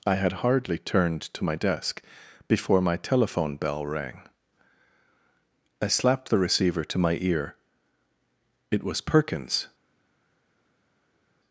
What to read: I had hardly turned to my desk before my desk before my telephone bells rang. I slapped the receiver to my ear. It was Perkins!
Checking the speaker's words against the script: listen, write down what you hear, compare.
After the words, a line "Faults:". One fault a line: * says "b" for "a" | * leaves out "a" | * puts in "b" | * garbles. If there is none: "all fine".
I had hardly turned to my desk before my telephone bell rang. I slapped the receiver to my ear. It was Perkins!
Faults:
* leaves out "desk before my"
* says "bell" for "bells"